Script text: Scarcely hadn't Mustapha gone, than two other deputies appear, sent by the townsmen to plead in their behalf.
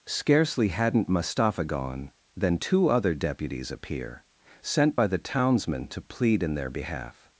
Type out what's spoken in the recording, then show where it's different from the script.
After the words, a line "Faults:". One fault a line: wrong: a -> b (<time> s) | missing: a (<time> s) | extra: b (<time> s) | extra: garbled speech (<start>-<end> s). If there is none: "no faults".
Scarcely hadn't Mustapha gone, than two other deputies appear, sent by the townsmen to plead in their behalf.
Faults:
no faults